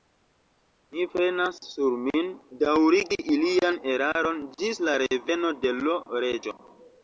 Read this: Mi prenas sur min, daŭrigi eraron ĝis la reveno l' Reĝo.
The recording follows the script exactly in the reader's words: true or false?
false